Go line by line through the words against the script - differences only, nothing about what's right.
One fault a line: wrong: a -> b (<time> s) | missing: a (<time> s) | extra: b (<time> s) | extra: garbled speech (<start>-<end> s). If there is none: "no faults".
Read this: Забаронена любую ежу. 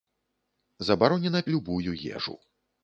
no faults